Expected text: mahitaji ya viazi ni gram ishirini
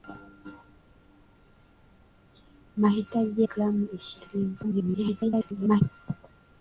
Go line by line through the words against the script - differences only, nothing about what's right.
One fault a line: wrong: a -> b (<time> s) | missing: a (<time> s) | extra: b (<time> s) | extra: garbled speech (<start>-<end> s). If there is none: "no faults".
missing: ya viazi ni (3.4 s)
extra: garbled speech (4.6-5.8 s)